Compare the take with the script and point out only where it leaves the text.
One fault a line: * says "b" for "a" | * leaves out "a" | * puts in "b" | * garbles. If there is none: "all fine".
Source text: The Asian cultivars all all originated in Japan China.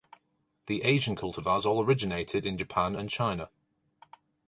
* leaves out "all"
* puts in "and"